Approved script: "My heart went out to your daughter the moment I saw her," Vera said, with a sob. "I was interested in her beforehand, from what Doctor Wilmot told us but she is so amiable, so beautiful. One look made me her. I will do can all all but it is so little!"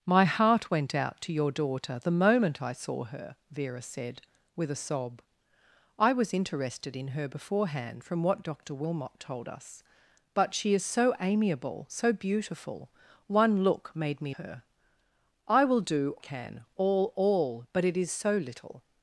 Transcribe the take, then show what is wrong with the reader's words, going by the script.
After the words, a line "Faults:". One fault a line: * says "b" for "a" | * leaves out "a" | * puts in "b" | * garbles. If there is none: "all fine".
"My heart went out to your daughter the moment I saw her," Vera said, with a sob. "I was interested in her beforehand, from what Doctor Wilmot told us but she is so amiable, so beautiful. One look made me her. I will do can all all but it is so little!"
Faults:
all fine